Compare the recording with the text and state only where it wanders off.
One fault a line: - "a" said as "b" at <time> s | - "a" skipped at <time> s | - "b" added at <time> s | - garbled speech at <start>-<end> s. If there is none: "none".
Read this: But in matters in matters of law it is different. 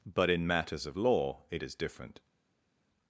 - "in matters" skipped at 0.9 s